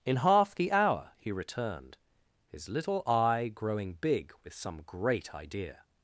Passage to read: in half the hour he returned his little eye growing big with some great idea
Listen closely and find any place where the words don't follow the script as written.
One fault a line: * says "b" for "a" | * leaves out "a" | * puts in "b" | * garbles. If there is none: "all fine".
all fine